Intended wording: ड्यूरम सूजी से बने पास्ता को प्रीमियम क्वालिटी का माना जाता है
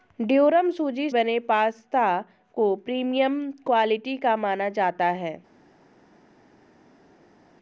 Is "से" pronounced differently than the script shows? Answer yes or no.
yes